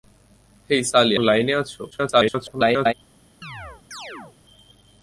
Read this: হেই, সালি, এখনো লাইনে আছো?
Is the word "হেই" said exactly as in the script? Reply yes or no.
yes